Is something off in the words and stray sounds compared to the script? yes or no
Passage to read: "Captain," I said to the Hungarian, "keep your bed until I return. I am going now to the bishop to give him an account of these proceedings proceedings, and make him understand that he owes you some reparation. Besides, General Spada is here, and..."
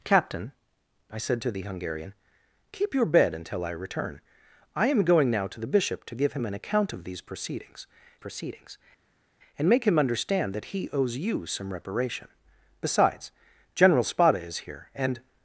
no